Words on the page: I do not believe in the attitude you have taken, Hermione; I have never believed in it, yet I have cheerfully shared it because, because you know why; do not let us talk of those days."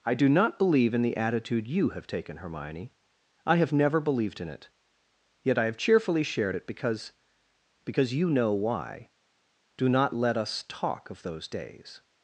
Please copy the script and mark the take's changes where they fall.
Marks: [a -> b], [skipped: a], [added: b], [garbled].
I do not believe in the attitude you have taken, Hermione; I have never believed in it, yet I have cheerfully shared it because, because you know why; do not let us talk of those days."